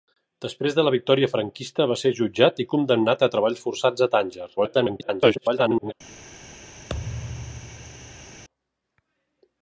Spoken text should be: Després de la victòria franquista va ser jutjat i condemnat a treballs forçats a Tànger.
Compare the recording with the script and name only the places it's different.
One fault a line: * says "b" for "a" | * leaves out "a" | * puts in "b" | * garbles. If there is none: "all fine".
* garbles